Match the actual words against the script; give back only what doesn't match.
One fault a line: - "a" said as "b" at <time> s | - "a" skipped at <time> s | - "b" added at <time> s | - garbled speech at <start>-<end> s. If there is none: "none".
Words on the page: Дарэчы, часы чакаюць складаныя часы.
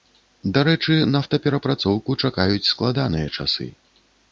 - "часы" said as "нафтаперапрацоўку" at 1.1 s